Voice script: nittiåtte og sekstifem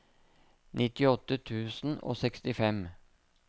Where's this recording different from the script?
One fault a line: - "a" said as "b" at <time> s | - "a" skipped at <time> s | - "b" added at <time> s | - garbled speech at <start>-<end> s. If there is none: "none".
- "tusen" added at 1.5 s